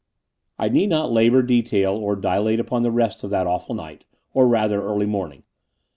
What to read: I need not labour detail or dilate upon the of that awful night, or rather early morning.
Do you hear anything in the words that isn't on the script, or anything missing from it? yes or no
yes